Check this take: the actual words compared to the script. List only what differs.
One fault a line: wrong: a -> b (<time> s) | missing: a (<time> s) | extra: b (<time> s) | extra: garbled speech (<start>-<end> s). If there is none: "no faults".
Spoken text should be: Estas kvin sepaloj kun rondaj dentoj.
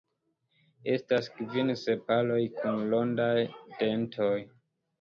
no faults